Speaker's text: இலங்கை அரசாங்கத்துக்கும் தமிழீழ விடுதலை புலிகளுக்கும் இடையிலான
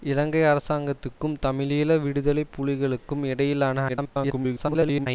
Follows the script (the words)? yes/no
no